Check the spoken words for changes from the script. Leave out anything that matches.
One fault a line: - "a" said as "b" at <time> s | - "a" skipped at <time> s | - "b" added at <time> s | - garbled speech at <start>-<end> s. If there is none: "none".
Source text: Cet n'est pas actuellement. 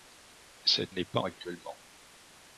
none